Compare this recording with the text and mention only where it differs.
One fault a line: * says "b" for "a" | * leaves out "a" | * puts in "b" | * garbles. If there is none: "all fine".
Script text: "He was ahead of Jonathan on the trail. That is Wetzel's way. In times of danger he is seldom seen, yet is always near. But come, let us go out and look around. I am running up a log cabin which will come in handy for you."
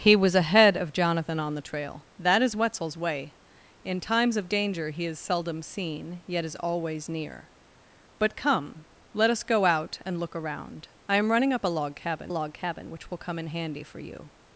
* puts in "log cabin"